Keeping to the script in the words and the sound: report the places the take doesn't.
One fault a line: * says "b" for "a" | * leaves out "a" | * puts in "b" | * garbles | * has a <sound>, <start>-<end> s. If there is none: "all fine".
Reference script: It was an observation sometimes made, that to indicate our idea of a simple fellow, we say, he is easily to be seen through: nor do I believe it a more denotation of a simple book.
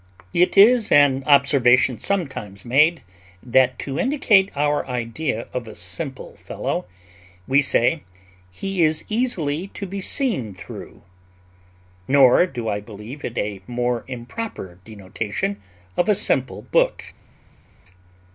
* says "is" for "was"
* puts in "improper"